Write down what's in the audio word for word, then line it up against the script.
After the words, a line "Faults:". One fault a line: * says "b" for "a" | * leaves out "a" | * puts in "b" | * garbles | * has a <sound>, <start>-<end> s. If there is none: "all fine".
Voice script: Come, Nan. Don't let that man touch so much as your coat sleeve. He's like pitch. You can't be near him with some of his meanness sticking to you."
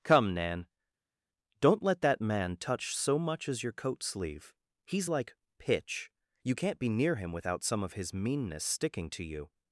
Come, Nan. Don't let that man touch so much as your coat sleeve. He's like pitch. You can't be near him without some of his meanness sticking to you."
Faults:
* says "without" for "with"